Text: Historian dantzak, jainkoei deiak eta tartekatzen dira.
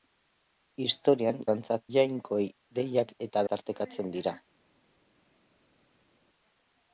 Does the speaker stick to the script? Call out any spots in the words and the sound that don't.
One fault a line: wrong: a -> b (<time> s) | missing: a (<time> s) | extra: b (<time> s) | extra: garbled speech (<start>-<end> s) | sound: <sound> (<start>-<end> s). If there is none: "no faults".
no faults